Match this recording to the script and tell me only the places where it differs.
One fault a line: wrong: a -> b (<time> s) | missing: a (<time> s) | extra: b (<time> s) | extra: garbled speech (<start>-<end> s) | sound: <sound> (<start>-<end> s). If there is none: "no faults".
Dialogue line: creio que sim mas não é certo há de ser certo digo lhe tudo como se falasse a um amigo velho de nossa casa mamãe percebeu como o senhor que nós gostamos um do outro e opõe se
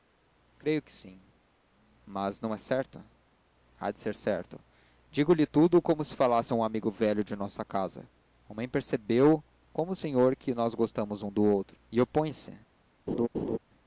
sound: laugh (13.1-13.6 s)